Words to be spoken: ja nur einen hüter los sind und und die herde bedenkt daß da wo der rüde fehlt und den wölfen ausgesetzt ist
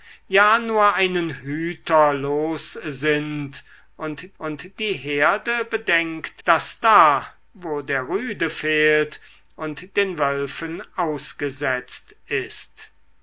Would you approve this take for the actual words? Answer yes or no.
yes